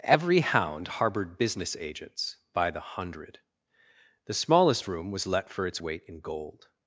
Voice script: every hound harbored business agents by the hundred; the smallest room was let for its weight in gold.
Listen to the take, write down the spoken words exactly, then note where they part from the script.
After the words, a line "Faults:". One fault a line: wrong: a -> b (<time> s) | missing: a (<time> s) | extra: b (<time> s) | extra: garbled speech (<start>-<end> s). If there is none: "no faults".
every hound harbored business agents by the hundred; the smallest room was let for its weight in gold.
Faults:
no faults